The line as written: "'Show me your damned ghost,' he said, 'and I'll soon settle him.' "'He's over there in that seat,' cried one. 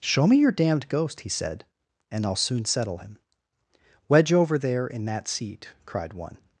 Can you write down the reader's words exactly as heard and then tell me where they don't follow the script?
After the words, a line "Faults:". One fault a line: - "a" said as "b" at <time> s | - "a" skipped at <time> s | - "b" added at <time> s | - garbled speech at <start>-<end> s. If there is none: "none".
"'Show me your damned ghost,' he said, 'and I'll soon settle him.' "'Wedge over there in that seat,' cried one.
Faults:
- "He's" said as "Wedge" at 4.1 s